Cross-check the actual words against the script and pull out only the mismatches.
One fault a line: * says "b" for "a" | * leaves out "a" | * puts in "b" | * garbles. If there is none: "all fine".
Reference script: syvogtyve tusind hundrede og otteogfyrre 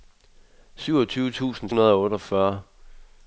all fine